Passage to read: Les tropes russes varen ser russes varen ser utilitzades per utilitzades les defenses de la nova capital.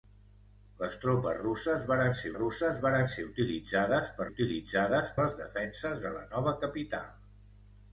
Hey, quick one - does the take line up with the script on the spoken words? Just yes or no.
yes